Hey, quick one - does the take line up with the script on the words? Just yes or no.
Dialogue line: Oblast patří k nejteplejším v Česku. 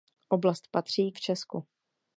no